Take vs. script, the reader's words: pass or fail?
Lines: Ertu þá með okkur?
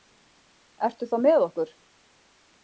pass